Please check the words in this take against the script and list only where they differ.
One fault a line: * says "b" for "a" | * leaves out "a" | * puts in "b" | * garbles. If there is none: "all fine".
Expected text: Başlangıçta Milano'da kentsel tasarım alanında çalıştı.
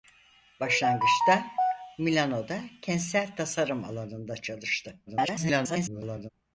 * garbles